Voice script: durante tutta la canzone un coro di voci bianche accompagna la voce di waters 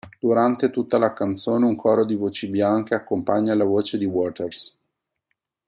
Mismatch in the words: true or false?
false